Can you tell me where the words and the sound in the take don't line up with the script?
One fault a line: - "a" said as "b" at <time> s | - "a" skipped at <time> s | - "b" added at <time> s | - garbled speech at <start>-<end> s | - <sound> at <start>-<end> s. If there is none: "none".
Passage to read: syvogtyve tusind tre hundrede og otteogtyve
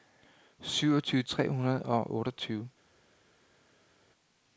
- "tusind" skipped at 1.2 s